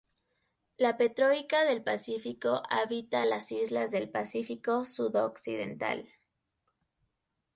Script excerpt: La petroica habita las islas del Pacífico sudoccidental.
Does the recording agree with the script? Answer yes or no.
no